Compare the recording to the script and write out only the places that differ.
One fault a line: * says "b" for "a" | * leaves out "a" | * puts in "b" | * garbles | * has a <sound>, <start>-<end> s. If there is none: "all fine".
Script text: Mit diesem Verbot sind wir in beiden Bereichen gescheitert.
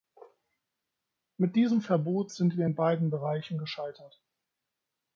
all fine